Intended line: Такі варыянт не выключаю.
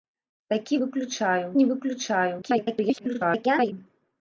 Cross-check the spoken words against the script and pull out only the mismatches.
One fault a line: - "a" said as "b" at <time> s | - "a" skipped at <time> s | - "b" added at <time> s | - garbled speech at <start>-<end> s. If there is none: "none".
- "варыянт" said as "выключаю" at 0.8 s
- garbled speech at 2.4-3.7 s